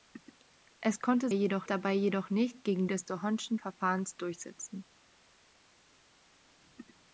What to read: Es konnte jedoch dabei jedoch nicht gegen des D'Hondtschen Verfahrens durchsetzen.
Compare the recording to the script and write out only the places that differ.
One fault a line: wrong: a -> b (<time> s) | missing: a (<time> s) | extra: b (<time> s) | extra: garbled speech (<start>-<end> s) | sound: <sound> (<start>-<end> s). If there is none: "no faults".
no faults